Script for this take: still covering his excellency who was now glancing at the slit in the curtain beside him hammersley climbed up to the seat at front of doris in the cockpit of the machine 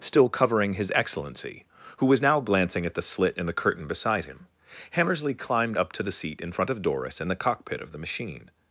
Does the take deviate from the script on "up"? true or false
false